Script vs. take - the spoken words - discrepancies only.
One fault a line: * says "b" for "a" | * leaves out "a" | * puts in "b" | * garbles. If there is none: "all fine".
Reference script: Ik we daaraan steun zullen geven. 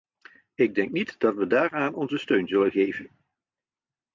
* puts in "denk niet dat"
* puts in "onze"